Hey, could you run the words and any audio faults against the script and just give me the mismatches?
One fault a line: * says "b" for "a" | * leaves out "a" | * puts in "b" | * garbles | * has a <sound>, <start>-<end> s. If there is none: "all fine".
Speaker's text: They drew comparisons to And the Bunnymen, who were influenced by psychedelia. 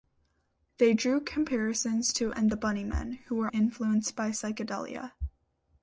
all fine